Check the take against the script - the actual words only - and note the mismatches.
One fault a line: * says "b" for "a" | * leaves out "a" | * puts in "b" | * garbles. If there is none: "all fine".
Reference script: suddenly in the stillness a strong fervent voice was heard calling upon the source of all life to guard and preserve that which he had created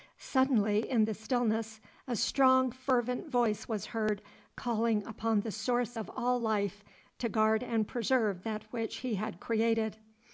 all fine